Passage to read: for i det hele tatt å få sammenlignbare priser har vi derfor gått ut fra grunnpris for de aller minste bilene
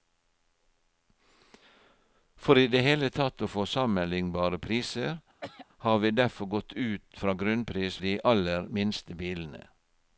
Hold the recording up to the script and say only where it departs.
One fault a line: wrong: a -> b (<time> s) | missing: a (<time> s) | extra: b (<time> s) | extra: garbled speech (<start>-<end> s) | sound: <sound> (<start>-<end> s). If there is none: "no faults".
sound: throat clearing (5.4-5.7 s)
missing: for (8.0 s)